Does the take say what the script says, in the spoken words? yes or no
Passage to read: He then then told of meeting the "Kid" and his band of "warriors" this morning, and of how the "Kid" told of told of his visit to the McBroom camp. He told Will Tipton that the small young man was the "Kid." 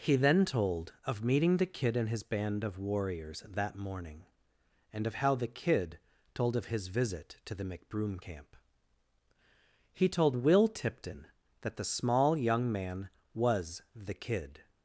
no